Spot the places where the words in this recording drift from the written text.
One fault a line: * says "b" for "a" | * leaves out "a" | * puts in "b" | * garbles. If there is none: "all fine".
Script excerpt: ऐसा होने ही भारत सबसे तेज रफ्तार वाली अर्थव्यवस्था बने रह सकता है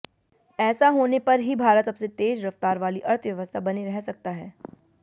* puts in "पर"